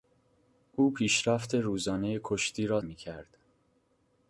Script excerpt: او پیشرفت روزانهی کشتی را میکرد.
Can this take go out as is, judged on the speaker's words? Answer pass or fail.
pass